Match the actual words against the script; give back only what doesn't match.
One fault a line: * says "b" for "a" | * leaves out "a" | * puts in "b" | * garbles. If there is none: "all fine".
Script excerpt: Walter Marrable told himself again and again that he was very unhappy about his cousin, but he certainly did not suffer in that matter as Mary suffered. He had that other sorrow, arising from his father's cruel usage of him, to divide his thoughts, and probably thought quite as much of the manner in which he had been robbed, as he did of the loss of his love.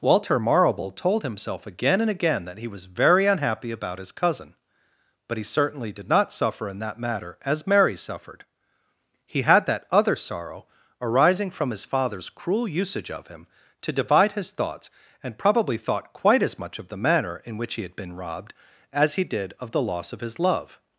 all fine